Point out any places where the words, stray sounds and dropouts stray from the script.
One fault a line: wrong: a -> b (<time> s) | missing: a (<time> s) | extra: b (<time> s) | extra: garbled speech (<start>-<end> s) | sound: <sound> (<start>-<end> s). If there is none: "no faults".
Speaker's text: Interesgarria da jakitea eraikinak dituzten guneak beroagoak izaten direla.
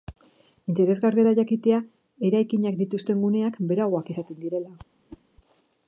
sound: whoosh (5.1-5.2 s)